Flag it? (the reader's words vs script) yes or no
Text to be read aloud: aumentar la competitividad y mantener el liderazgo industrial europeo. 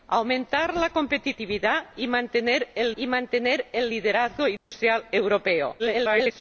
yes